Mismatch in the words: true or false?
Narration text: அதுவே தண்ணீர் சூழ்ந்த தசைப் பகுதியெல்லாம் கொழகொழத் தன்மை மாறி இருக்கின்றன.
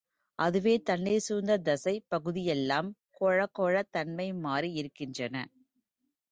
false